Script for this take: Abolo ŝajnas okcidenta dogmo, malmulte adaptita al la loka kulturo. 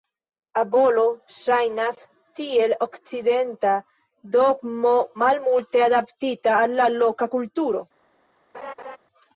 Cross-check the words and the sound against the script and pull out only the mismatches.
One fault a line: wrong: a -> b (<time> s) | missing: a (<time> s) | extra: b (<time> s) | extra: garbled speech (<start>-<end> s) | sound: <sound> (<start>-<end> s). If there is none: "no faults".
extra: tiel (2.4 s)
sound: laugh (8.5-9.0 s)